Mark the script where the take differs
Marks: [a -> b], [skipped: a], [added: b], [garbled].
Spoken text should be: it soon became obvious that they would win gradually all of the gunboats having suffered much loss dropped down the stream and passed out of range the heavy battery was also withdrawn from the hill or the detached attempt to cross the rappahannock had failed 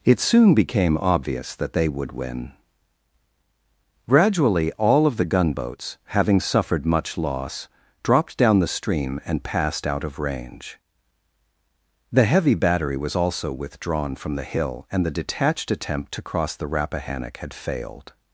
it soon became obvious that they would win gradually all of the gunboats having suffered much loss dropped down the stream and passed out of range the heavy battery was also withdrawn from the hill [or -> and] the detached attempt to cross the rappahannock had failed